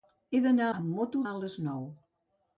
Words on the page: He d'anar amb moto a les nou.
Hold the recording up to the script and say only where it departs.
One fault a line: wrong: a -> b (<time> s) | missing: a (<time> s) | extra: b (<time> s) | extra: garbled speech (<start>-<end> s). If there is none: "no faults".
no faults